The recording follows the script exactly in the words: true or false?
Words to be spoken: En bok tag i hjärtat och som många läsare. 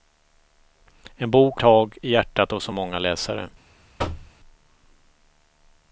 true